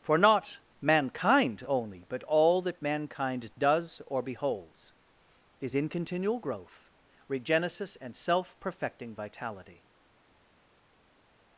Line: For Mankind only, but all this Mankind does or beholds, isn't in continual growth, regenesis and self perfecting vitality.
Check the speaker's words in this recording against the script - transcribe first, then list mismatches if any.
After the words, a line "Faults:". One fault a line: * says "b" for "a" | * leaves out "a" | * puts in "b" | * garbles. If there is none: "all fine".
For not Mankind only, but all that Mankind does or beholds, is in continual growth, regenesis and self perfecting vitality.
Faults:
* puts in "not"
* says "that" for "this"
* says "is" for "isn't"